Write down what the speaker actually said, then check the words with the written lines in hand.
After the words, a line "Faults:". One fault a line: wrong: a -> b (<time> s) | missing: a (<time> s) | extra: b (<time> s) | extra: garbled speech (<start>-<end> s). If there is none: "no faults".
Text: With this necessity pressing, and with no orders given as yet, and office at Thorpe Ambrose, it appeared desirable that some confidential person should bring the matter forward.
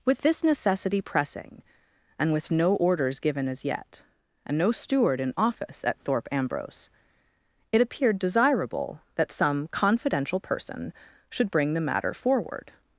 With this necessity pressing, and with no orders given as yet, and no steward in office at Thorpe Ambrose, it appeared desirable that some confidential person should bring the matter forward.
Faults:
extra: no steward in (4.6 s)